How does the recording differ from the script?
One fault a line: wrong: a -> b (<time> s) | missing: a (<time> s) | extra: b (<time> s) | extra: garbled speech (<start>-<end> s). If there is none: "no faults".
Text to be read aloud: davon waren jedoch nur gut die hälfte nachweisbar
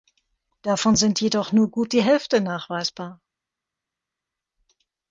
wrong: waren -> sind (0.9 s)